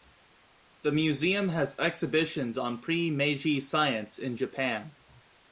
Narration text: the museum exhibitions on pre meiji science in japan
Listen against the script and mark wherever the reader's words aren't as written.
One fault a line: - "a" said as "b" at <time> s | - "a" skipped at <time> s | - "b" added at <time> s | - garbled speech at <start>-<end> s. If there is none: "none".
- "has" added at 1.5 s